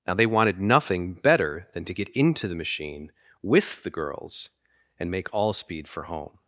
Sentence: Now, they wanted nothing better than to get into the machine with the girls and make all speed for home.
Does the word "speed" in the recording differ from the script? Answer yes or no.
no